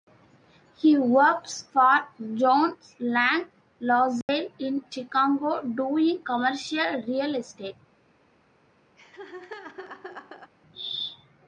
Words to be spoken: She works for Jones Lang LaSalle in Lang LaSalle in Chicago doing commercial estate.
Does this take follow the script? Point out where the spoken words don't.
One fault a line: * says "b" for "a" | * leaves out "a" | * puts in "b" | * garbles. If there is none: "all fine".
* says "He" for "She"
* leaves out "Lang LaSalle in"
* puts in "real"